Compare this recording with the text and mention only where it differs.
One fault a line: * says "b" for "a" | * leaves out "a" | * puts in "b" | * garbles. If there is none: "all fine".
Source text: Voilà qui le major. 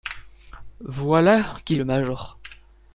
all fine